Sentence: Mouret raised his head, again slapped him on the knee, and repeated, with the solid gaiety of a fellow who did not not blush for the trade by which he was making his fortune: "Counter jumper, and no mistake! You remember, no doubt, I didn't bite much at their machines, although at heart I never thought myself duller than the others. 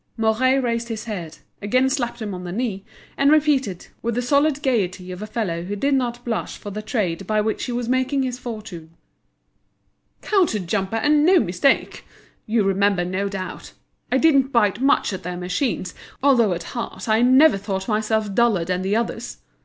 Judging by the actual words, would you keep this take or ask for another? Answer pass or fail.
fail